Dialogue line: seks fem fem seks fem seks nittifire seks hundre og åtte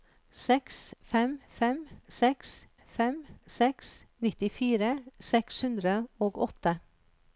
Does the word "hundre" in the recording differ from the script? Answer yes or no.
no